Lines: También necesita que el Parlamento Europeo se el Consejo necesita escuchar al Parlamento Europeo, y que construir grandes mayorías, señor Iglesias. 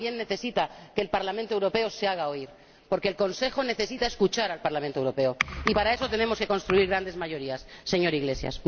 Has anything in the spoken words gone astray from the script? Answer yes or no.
yes